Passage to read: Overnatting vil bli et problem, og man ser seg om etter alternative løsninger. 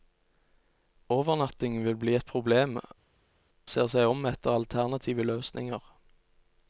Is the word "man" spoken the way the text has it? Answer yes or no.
no